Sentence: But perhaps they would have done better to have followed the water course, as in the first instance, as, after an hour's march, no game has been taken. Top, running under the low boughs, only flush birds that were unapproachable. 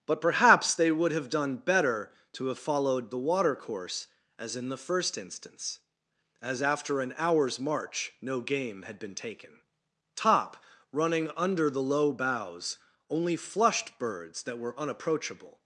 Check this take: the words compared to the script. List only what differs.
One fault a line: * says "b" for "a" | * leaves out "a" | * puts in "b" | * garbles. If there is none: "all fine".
* says "had" for "has"
* says "flushed" for "flush"